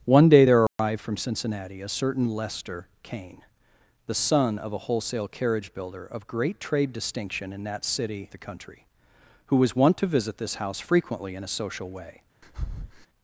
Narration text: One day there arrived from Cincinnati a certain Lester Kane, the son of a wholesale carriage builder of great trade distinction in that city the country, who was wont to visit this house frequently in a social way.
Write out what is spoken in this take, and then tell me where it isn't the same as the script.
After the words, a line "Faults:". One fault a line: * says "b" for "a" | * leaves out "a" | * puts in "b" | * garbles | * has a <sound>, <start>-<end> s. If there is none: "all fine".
One day there arrived from Cincinnati a certain Lester Kane, the son of a wholesale carriage builder of great trade distinction in that city the country, who was wont to visit this house frequently in a social way.
Faults:
* has a dropout, 0.7-0.8 s
* has a breath, 12.4-13.1 s